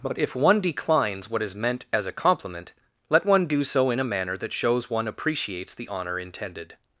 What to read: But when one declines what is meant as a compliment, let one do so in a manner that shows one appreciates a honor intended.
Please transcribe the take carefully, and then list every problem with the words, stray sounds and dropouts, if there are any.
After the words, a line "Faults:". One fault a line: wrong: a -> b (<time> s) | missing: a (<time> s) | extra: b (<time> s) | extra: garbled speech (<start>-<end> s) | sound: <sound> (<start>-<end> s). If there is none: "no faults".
But if one declines what is meant as a compliment, let one do so in a manner that shows one appreciates the honor intended.
Faults:
wrong: when -> if (0.2 s)
wrong: a -> the (5.8 s)